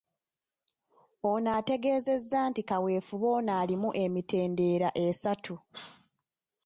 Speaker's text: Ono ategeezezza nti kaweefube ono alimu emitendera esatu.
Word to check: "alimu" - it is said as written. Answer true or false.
true